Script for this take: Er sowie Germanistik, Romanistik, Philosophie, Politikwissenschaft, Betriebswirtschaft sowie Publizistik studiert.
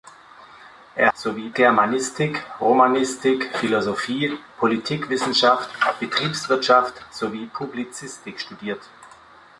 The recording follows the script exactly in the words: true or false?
true